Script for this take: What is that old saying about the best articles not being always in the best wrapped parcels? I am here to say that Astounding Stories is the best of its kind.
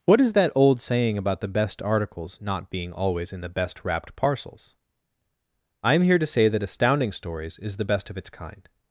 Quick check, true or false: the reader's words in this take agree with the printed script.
true